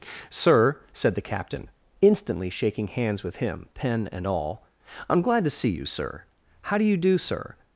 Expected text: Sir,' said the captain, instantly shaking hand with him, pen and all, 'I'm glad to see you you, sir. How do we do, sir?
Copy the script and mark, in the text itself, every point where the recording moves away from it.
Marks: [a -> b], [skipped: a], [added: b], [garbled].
Sir,' said the captain, instantly shaking [hand -> hands] with him, pen and all, 'I'm glad to see you [skipped: you,] sir. How do [we -> you] do, sir?